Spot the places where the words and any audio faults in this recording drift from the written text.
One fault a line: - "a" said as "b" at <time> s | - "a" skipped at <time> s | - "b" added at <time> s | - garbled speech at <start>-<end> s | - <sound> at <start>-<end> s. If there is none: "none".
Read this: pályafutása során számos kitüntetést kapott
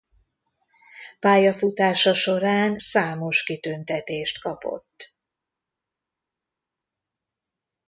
none